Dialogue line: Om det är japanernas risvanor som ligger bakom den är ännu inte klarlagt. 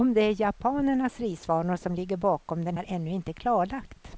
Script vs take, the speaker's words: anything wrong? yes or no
no